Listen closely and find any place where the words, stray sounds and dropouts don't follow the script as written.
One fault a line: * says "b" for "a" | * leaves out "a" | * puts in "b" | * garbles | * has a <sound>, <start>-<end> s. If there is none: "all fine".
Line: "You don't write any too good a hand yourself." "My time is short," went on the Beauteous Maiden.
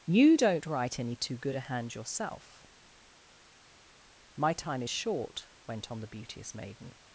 all fine